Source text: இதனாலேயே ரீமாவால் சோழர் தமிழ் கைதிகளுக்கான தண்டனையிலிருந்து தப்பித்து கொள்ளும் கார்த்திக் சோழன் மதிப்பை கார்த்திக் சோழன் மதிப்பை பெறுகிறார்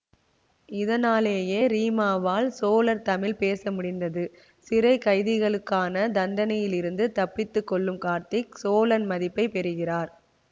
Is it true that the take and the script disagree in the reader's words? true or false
true